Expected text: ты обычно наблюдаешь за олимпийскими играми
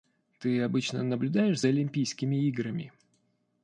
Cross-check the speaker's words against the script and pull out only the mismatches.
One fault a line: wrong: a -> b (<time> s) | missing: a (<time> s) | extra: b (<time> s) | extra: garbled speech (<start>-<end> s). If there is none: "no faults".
no faults